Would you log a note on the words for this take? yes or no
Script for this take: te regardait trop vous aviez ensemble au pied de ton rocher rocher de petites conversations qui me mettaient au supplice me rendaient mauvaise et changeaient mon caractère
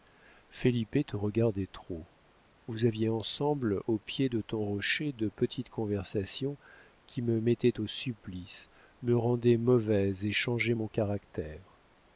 yes